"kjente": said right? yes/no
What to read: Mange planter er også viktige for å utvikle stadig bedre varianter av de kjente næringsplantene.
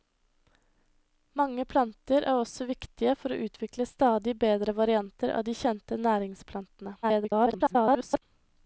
yes